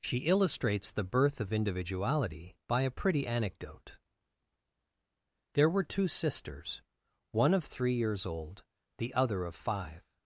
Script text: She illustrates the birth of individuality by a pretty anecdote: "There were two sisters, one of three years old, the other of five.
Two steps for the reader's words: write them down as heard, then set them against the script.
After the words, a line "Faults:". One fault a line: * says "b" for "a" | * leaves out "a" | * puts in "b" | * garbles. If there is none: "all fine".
She illustrates the birth of individuality by a pretty anecdote: "There were two sisters, one of three years old, the other of five.
Faults:
all fine